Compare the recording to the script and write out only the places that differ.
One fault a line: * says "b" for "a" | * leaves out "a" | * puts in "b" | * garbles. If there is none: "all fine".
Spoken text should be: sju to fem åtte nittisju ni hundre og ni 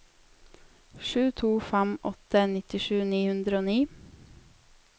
all fine